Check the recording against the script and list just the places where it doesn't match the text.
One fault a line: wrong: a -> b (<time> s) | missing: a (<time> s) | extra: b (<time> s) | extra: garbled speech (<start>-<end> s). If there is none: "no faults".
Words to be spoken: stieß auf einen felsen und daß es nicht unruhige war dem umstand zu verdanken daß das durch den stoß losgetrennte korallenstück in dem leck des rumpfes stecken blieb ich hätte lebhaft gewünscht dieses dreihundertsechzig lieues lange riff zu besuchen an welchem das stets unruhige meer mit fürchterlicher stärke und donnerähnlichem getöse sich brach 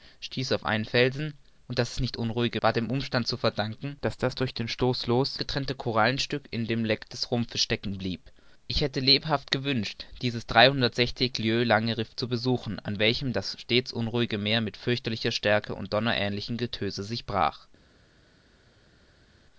no faults